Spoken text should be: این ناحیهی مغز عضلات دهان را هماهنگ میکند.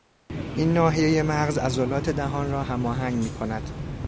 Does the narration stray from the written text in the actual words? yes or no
no